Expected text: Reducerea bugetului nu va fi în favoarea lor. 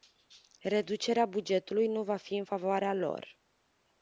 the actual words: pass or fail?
pass